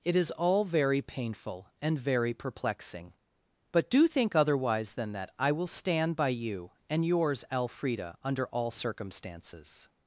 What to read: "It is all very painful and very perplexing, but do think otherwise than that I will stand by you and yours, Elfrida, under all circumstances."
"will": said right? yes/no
yes